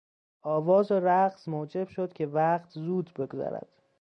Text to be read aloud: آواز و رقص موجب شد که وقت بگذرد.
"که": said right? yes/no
yes